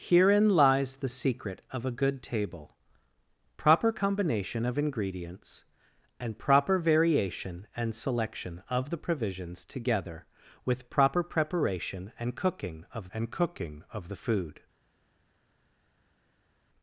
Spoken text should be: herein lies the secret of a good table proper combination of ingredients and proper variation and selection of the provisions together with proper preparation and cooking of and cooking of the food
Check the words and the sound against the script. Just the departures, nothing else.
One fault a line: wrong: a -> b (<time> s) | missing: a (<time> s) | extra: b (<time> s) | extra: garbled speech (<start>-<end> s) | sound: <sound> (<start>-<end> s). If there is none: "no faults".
no faults